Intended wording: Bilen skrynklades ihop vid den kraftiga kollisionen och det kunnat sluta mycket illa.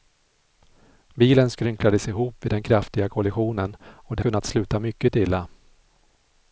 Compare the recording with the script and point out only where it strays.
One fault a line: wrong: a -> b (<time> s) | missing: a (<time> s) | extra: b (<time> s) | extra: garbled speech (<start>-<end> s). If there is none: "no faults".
no faults